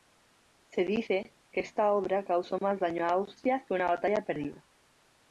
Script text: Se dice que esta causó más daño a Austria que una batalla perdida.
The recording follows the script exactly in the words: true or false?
false